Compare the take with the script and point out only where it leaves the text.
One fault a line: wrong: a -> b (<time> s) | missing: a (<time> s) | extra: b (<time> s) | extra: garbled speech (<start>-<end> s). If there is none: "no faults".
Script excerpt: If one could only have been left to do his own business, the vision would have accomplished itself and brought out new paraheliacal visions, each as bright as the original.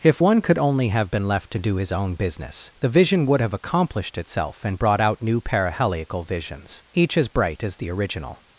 no faults